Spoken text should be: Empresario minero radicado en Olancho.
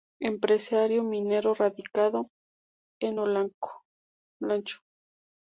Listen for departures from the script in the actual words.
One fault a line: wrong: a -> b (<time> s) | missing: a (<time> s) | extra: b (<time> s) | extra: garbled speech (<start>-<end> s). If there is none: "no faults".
no faults